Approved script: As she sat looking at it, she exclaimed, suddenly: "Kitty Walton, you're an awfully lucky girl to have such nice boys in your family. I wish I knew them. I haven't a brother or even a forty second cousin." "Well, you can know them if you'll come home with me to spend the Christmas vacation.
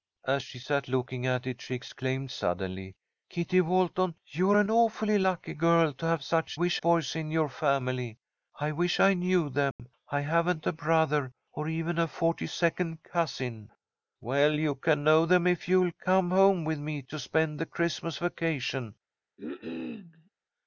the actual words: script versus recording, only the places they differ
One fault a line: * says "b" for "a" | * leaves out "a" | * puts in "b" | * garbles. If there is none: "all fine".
* says "wish" for "nice"